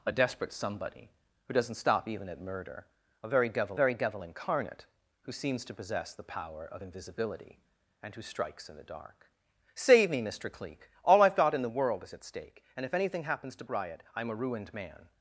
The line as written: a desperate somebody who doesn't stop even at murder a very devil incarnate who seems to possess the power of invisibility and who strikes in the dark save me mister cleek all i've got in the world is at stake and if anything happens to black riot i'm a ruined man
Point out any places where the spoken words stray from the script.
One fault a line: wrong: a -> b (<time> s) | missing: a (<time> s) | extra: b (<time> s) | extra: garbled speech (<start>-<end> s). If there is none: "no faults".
extra: very devil (3.7 s)
missing: black (13.6 s)